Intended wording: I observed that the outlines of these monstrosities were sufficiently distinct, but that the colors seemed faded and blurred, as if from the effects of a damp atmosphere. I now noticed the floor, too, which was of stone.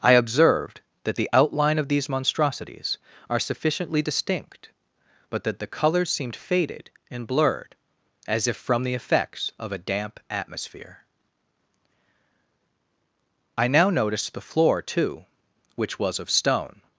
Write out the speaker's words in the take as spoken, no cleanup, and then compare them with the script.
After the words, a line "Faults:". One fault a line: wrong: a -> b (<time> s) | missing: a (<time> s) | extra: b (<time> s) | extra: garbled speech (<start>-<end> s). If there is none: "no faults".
I observed that the outline of these monstrosities are sufficiently distinct, but that the colors seemed faded and blurred, as if from the effects of a damp atmosphere. I now noticed the floor, too, which was of stone.
Faults:
wrong: outlines -> outline (1.3 s)
wrong: were -> are (3.3 s)